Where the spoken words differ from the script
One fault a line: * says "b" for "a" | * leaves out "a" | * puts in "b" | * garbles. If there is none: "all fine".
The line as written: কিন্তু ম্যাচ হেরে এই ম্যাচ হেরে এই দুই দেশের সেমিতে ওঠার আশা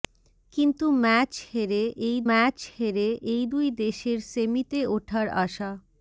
all fine